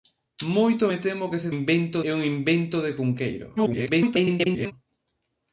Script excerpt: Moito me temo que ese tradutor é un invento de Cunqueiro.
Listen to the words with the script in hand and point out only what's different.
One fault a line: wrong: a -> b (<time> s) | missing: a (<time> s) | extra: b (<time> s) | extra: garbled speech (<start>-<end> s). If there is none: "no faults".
wrong: tradutor -> invento (1.5 s)
extra: garbled speech (3.6-4.7 s)